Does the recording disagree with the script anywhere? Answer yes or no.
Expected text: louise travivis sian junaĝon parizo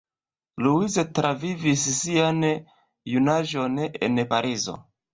yes